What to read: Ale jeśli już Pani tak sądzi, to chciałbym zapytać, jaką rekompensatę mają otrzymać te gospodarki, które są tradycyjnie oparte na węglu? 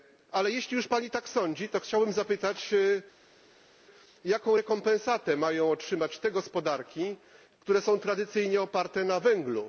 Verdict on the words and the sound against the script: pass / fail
pass